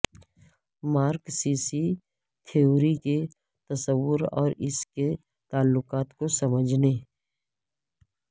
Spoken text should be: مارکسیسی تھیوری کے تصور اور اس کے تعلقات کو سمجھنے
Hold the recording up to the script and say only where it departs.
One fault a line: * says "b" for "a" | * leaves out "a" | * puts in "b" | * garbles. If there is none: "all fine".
all fine